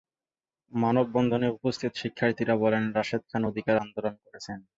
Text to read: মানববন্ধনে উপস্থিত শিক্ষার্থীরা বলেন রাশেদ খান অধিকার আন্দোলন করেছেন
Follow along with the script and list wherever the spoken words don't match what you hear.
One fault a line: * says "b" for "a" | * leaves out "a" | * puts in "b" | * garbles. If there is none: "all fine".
all fine